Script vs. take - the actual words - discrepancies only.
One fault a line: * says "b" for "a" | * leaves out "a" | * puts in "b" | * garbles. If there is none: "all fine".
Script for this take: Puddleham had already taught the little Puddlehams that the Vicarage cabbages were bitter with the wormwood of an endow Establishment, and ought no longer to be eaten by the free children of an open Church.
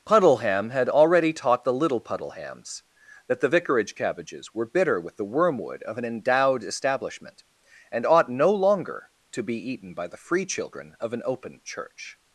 * says "endowed" for "endow"